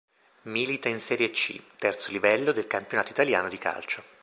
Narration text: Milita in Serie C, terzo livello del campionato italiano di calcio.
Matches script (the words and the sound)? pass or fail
pass